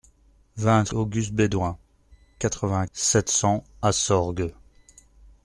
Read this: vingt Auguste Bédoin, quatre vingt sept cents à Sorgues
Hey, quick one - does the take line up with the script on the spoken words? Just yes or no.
yes